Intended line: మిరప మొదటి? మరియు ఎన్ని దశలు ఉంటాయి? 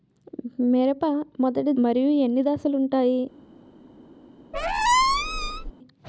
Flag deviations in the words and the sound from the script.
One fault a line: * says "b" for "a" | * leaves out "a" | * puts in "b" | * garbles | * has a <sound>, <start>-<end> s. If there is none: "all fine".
* has a squeak, 4.5-5.7 s